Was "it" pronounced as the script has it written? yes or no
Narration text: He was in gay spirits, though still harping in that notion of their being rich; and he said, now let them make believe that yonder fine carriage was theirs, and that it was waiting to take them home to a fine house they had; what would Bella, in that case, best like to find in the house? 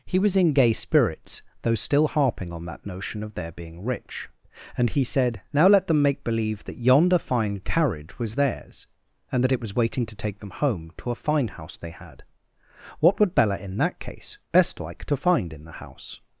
yes